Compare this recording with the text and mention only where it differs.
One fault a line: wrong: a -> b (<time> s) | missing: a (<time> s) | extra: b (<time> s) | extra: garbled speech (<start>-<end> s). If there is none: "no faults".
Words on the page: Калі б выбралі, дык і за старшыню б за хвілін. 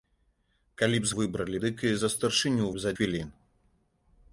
no faults